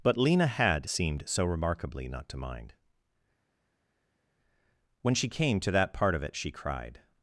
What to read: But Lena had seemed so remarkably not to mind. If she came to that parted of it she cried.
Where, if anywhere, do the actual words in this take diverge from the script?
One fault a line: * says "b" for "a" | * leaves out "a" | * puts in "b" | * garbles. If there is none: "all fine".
* says "When" for "If"
* says "part" for "parted"